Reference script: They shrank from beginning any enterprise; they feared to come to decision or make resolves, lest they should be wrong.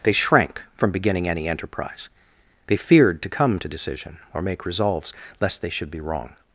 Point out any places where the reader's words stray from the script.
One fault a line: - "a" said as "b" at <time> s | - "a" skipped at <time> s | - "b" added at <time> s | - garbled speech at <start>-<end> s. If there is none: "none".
none